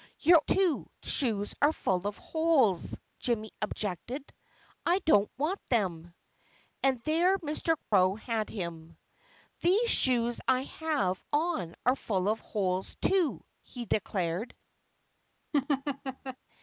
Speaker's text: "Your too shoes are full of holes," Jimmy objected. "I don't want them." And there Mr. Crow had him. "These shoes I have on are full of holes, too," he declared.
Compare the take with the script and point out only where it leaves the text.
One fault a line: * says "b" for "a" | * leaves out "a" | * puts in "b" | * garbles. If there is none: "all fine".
all fine